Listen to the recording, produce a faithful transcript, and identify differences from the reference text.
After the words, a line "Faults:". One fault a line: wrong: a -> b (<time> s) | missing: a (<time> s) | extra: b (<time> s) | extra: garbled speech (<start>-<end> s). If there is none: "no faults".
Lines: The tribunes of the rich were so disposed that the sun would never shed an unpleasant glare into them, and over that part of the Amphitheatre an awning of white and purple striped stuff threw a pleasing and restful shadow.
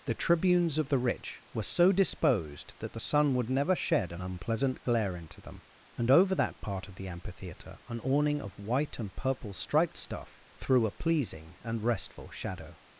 The tribunes of the rich were so disposed that the sun would never shed an unpleasant glare into them, and over that part of the Amphitheatre an awning of white and purple striped stuff threw a pleasing and restful shadow.
Faults:
no faults